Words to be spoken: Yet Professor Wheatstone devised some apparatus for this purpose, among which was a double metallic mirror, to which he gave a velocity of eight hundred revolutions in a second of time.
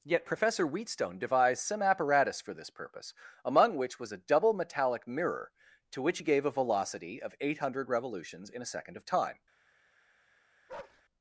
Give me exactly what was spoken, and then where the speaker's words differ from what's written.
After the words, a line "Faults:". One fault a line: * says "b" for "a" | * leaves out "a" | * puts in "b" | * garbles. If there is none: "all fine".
Yet Professor Wheatstone devised some apparatus for this purpose, among which was a double metallic mirror, to which he gave a velocity of eight hundred revolutions in a second of time.
Faults:
all fine